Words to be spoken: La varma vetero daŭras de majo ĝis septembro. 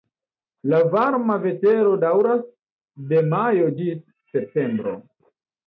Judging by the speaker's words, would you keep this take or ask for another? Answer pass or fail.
pass